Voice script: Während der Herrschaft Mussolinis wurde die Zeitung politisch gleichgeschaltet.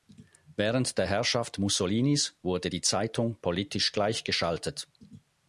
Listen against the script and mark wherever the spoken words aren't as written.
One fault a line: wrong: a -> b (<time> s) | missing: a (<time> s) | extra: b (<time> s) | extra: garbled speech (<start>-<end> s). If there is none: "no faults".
no faults